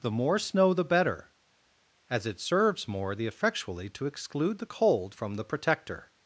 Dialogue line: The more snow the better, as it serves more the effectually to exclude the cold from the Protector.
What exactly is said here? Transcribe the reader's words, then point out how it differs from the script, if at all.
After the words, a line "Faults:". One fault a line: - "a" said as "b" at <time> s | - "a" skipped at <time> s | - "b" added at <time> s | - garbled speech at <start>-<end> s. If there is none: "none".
The more snow the better, as it serves more the effectually to exclude the cold from the Protector.
Faults:
none